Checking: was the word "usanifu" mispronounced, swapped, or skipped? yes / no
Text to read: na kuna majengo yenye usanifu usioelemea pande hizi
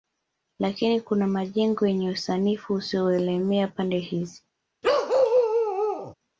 no